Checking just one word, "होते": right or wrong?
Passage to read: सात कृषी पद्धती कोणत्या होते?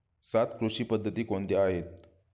wrong